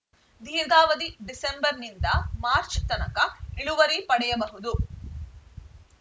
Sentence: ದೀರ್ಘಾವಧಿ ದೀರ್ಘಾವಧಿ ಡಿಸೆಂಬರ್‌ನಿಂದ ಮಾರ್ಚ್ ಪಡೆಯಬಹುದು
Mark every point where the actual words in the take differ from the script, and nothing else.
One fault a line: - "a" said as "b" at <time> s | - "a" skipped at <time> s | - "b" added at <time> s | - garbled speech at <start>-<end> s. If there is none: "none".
- "ದೀರ್ಘಾವಧಿ" skipped at 1.1 s
- "ತನಕ ಇಳುವರಿ" added at 2.9 s